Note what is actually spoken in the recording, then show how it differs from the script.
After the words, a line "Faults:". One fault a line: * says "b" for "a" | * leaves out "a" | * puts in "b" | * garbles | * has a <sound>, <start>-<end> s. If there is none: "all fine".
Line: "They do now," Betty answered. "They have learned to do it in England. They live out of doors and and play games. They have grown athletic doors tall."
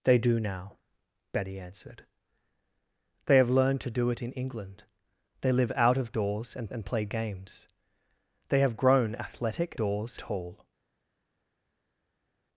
"They do now," Betty answered. "They have learned to do it in England. They live out of doors and and play games. They have grown athletic doors tall."
Faults:
all fine